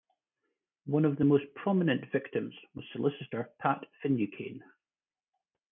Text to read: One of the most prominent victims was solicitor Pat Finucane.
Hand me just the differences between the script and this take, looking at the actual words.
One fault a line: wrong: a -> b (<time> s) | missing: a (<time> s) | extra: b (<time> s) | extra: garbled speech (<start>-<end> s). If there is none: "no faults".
no faults